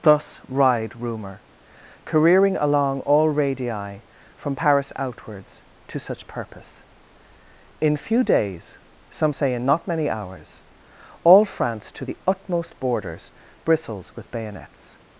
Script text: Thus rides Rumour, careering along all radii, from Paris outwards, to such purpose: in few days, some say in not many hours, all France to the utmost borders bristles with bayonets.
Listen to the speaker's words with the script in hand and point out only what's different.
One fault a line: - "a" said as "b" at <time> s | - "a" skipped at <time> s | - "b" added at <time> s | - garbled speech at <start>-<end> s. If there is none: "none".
- "rides" said as "ride" at 0.5 s